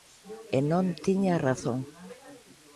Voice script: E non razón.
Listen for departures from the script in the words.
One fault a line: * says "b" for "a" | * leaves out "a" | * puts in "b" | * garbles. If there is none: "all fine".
* puts in "tiña"